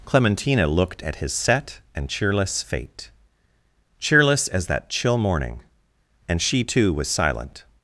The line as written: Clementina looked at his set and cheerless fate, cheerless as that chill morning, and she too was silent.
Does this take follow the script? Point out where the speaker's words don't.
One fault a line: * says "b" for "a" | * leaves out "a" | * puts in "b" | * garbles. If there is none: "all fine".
all fine